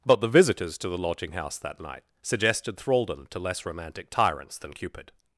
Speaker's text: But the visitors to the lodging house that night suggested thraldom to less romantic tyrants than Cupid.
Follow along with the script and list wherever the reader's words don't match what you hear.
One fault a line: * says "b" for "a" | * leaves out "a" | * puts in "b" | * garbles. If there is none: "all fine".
all fine